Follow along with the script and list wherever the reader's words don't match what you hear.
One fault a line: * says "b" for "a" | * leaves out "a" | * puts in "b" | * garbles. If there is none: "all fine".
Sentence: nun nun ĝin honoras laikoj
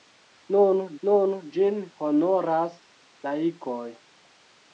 all fine